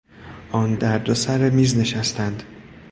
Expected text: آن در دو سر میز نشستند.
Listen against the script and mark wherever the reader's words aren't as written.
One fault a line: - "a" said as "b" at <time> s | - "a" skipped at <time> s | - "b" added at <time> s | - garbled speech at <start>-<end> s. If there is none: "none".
none